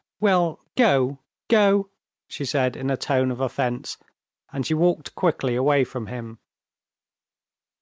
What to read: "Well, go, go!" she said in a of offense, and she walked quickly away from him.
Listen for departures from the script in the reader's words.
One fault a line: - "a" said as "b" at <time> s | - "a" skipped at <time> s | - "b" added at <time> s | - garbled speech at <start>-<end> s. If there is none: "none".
- "tone" added at 3.0 s